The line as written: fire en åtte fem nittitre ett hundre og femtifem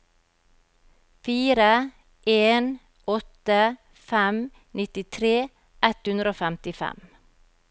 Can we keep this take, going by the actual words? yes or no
yes